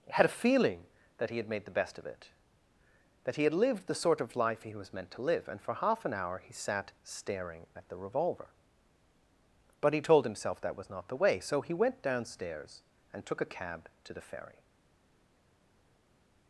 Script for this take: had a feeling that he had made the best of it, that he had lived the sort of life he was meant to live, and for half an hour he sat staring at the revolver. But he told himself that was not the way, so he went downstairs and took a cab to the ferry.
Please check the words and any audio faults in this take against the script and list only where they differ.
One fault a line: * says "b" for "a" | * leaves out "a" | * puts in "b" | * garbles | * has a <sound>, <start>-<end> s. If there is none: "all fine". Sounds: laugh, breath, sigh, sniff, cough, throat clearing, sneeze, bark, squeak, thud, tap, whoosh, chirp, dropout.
all fine